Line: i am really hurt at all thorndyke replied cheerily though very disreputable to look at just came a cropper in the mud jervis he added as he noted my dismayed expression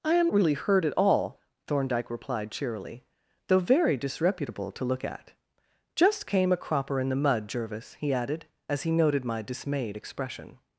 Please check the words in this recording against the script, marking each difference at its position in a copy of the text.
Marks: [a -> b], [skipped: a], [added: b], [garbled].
i am really hurt at all thorndyke replied cheerily though very disreputable to look at just came a cropper in the mud jervis he added as he noted my dismayed expression